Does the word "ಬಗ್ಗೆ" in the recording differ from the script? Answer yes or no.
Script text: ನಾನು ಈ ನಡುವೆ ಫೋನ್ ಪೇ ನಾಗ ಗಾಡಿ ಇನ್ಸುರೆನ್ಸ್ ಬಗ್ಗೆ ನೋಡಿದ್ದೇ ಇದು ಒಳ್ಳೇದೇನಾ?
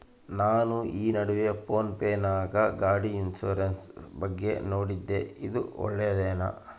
no